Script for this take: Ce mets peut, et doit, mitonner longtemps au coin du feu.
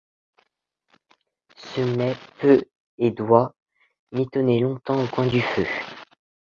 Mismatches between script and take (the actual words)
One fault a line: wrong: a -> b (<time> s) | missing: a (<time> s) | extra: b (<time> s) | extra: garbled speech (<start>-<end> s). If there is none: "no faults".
no faults